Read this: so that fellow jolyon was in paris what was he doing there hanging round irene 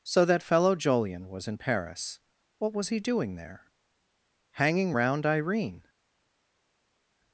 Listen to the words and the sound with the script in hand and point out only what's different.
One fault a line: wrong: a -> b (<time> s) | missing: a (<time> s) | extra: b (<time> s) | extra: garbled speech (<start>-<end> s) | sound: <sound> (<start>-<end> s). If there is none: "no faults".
no faults